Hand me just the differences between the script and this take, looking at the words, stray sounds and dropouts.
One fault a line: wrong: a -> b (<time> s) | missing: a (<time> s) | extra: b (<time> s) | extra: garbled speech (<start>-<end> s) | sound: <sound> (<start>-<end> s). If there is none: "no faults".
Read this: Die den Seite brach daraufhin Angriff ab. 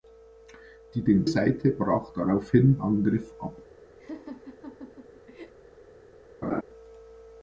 sound: laugh (4.0-5.5 s)
sound: laugh (6.4-6.6 s)